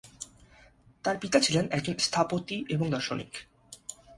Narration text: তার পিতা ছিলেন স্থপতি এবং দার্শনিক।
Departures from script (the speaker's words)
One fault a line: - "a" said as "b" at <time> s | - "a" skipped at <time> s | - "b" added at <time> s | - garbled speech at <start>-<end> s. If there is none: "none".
- "একজন" added at 1.7 s